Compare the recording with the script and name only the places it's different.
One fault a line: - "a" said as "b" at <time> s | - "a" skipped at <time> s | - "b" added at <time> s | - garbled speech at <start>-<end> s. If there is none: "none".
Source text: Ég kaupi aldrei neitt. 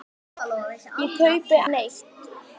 - "aldrei" skipped at 1.6 s